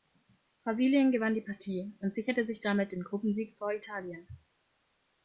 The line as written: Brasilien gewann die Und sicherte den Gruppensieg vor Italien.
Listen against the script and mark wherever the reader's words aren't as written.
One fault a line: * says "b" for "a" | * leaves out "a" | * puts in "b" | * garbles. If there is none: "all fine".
* puts in "Partie"
* puts in "sich damit"